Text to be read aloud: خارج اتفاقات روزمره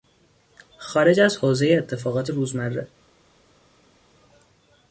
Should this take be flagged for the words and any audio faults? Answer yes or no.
yes